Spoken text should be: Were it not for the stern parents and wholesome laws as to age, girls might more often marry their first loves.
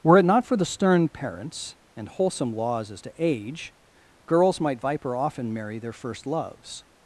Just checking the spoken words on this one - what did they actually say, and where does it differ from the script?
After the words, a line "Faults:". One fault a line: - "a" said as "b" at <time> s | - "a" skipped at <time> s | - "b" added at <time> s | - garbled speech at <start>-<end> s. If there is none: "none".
Were it not for the stern parents and wholesome laws as to age, girls might viper often marry their first loves.
Faults:
- "more" said as "viper" at 4.8 s